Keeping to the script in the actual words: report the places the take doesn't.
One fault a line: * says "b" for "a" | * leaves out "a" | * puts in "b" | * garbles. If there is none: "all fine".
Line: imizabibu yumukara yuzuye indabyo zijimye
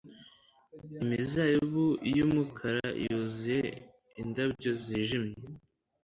all fine